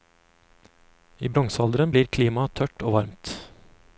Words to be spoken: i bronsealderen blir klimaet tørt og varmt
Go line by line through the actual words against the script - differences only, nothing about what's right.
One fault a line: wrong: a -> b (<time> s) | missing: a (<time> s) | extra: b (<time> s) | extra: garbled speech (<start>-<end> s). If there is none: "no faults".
no faults